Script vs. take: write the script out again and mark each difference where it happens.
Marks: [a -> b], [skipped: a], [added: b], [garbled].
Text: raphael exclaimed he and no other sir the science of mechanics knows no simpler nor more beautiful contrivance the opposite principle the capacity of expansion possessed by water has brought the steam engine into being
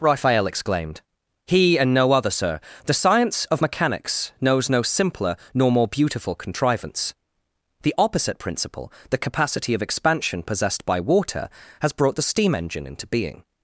raphael exclaimed he and no other sir the science of mechanics knows no simpler nor more beautiful contrivance the opposite principle the capacity of expansion possessed by water has brought the steam engine into being